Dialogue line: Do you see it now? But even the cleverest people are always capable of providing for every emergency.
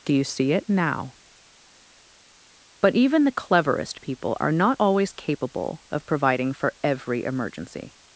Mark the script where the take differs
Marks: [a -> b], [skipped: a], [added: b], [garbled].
Do you see it now? But even the cleverest people are [added: not] always capable of providing for every emergency.